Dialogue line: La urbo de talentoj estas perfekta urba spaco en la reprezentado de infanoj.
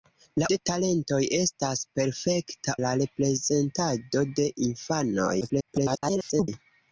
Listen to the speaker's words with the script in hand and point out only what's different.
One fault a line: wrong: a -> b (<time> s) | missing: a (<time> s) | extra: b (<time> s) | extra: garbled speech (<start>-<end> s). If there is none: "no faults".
missing: urbo (0.5 s)
missing: urba spaco en (2.7 s)
extra: garbled speech (5.4-6.5 s)